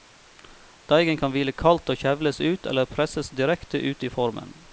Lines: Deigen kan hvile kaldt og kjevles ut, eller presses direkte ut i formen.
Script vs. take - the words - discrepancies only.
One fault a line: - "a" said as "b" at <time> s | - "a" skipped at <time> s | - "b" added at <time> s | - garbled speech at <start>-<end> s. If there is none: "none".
none